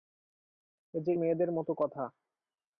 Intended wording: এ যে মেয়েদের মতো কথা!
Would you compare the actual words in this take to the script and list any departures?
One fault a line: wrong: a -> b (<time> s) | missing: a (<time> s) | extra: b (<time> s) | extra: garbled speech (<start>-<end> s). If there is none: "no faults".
no faults